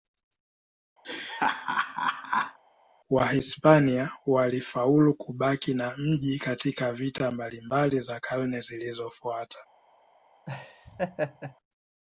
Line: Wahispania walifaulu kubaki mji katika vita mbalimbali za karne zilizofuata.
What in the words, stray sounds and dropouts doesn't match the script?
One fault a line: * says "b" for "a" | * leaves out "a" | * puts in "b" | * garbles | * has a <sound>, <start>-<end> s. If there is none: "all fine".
* has a laugh, 1.0-2.6 s
* puts in "na"
* has a laugh, 10.5-11.6 s